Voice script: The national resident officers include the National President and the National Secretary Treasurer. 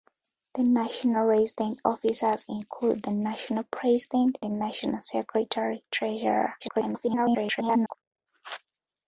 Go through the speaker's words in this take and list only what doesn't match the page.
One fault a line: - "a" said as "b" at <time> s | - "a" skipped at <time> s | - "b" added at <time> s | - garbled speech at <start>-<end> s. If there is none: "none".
- "and" skipped at 4.4 s
- garbled speech at 6.6-8.0 s